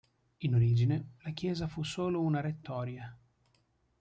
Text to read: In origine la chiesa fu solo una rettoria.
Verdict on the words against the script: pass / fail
pass